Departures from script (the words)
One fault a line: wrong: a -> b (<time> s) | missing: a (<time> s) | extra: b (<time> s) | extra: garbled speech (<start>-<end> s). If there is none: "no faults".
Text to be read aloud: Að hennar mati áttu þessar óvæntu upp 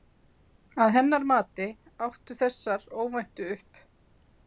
no faults